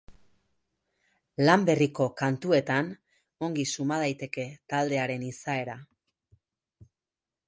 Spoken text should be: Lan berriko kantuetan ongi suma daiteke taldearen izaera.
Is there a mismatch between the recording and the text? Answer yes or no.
no